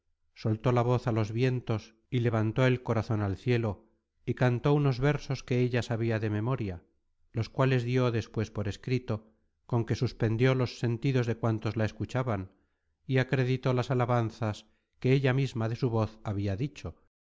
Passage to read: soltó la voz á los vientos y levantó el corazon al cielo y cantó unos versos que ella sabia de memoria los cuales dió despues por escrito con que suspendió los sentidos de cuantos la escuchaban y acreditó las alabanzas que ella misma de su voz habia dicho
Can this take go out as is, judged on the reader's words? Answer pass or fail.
pass